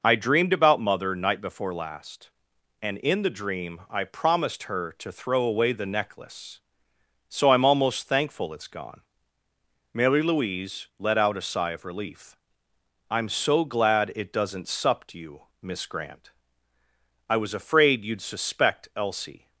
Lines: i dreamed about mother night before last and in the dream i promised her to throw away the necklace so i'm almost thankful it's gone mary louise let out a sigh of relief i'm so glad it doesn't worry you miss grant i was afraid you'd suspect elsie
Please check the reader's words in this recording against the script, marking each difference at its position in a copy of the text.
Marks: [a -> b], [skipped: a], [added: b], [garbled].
i dreamed about mother night before last and in the dream i promised her to throw away the necklace so i'm almost thankful it's gone mary louise let out a sigh of relief i'm so glad it doesn't [worry -> supped] you miss grant i was afraid you'd suspect elsie